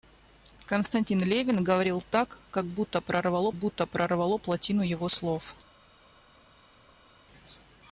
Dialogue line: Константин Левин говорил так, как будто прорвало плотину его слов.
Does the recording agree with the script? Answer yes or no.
no